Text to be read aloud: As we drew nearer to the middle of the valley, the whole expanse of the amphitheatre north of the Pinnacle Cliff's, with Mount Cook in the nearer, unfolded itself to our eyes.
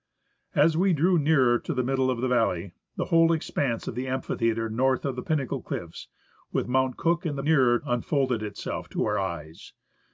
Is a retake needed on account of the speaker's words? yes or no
no